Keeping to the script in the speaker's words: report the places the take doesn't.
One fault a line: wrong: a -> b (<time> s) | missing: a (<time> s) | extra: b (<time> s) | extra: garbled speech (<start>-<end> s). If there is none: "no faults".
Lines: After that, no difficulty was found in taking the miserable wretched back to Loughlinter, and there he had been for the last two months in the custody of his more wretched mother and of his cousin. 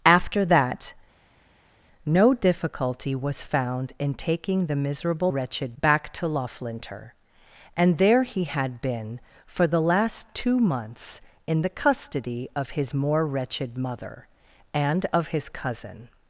no faults